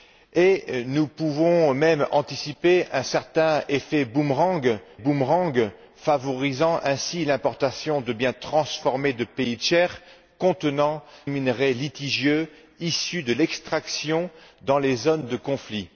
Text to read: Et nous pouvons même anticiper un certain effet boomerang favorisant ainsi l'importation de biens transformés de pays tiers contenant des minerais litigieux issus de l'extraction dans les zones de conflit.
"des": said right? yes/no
no